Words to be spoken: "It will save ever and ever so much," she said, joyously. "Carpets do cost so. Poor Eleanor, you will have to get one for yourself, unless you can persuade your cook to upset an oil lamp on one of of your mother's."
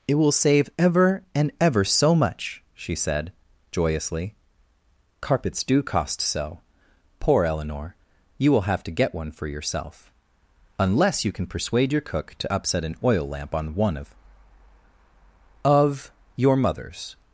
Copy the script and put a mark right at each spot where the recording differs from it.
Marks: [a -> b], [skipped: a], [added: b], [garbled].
"It will save ever and ever so much," she said, joyously. "Carpets do cost so. Poor Eleanor, you will have to get one for yourself, unless you can persuade your cook to upset an oil lamp on one of of your mother's."